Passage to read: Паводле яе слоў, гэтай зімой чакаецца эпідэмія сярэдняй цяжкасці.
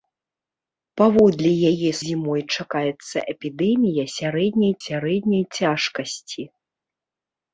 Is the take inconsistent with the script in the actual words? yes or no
yes